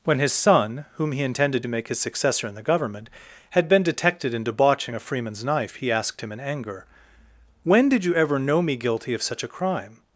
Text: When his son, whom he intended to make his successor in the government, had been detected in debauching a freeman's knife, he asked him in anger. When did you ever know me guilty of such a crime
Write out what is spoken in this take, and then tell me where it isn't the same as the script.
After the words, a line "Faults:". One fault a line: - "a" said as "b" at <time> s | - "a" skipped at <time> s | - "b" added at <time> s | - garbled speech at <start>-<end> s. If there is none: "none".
When his son, whom he intended to make his successor in the government, had been detected in debauching a freeman's knife, he asked him in anger. When did you ever know me guilty of such a crime
Faults:
none